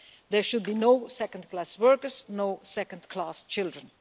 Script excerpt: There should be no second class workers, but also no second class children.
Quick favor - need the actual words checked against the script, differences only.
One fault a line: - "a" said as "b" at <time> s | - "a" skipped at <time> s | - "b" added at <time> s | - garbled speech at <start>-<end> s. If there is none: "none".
- "but also" skipped at 2.2 s